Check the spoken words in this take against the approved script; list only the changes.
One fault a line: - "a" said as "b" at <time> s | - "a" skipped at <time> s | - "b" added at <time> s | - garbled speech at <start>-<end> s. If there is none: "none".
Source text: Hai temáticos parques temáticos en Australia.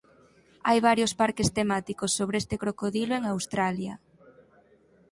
- "temáticos" said as "varios" at 0.9 s
- "sobre este crocodilo" added at 2.2 s